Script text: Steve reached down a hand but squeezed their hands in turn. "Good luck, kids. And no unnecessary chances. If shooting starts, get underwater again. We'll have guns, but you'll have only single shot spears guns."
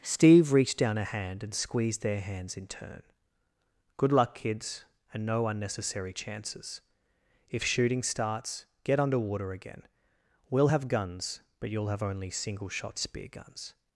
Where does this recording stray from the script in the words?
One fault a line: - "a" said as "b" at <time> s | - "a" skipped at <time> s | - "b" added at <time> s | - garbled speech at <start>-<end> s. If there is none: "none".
- "but" said as "and" at 1.4 s
- "spears" said as "spear" at 13.0 s